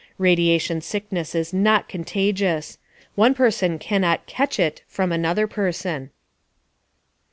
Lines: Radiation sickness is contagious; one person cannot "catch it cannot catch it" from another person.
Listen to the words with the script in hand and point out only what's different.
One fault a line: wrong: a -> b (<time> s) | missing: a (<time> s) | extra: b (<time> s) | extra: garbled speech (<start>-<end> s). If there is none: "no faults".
extra: not (1.5 s)
missing: cannot catch it (4.8 s)